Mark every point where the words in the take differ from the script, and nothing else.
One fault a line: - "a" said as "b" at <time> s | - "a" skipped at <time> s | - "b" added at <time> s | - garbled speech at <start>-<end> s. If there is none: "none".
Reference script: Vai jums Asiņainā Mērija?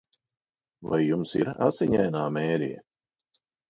- "ir" added at 1.4 s